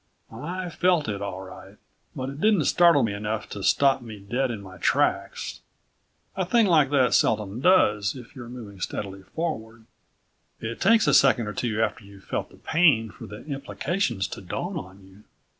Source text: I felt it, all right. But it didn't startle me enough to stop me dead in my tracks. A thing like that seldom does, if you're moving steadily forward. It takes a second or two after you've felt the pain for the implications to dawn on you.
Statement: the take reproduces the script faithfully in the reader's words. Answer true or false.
true